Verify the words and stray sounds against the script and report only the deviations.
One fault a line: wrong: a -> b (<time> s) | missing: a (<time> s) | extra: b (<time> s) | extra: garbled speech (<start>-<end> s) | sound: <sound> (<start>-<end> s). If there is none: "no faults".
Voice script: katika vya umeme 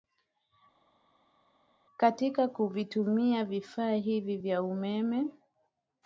extra: kuvitumia vifaa hivi (2.5 s)